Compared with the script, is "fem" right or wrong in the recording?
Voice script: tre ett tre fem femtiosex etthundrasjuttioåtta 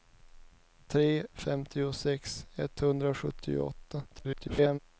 wrong